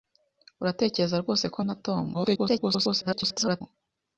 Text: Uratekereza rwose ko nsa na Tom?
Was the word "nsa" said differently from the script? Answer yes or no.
yes